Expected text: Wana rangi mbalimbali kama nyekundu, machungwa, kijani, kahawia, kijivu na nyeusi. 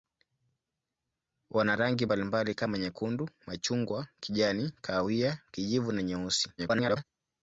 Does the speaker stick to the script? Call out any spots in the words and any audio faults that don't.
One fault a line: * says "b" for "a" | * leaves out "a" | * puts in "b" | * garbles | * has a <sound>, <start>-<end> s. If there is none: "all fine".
* garbles